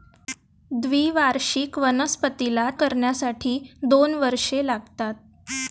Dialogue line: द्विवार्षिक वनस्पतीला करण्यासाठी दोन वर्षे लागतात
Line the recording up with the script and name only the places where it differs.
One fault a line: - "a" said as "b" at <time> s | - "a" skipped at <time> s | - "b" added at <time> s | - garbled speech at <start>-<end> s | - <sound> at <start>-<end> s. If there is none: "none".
none